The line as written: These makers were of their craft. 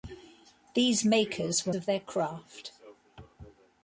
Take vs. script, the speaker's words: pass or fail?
pass